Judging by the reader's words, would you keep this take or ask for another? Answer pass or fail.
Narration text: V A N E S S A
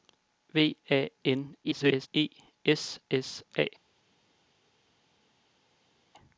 fail